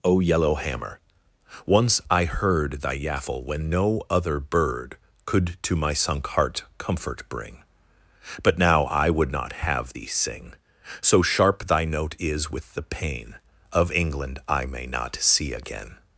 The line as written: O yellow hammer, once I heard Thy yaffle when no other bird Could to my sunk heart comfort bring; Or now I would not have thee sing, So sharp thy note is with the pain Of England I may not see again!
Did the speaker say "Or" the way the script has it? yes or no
no